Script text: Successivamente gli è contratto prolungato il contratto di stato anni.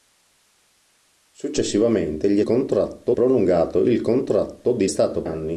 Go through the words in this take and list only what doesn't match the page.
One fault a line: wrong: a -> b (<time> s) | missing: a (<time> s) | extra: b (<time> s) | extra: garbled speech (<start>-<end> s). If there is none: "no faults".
no faults